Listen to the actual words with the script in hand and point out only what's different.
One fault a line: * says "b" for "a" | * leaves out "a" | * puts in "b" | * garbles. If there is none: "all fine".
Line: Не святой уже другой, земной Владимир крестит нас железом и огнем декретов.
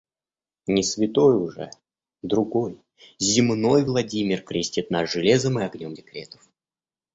all fine